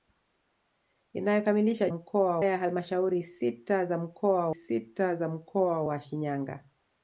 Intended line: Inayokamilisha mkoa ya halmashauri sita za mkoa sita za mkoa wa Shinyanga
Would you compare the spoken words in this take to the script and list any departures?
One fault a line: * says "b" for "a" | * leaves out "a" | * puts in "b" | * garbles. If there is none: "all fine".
all fine